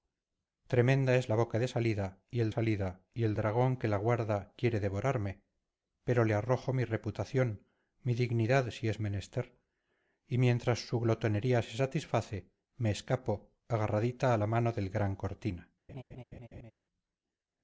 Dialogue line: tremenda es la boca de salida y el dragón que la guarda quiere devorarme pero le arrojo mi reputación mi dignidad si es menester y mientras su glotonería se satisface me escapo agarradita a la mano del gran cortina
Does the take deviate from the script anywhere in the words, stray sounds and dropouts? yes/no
yes